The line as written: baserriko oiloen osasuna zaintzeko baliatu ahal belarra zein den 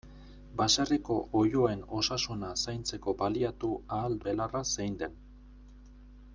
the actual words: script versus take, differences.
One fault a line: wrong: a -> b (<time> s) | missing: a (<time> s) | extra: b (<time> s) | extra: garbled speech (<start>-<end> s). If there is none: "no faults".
no faults